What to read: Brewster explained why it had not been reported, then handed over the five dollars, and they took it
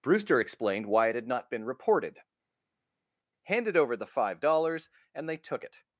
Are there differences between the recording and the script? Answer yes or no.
yes